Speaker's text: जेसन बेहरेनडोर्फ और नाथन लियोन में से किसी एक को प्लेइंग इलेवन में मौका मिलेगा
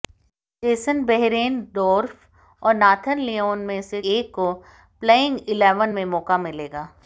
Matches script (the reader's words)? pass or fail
fail